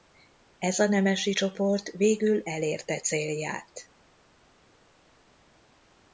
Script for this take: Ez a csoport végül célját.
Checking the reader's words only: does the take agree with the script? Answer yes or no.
no